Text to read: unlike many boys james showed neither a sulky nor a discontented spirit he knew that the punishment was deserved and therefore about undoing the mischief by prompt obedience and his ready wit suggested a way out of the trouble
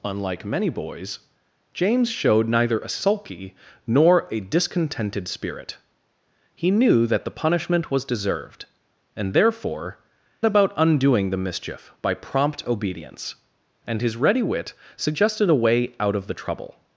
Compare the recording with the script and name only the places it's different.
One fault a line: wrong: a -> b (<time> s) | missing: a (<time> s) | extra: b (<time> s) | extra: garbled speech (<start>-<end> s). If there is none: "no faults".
no faults